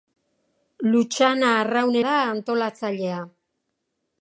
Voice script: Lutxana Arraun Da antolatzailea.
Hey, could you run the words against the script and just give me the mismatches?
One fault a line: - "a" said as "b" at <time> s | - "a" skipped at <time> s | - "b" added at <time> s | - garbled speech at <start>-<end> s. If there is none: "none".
none